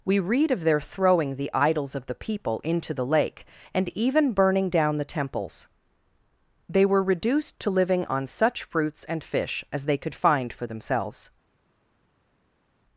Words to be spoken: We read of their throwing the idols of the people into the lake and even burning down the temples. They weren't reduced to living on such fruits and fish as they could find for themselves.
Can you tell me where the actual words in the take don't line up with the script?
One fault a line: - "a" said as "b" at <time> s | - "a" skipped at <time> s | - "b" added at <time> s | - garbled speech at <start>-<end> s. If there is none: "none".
- "weren't" said as "were" at 6.8 s